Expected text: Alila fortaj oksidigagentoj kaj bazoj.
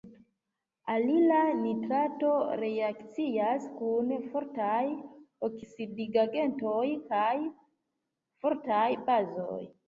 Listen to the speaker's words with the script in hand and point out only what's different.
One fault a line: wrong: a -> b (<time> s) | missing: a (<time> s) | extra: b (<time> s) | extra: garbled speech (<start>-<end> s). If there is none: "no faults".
extra: nitrato reakcias kun (1.6 s)
extra: fortaj (8.5 s)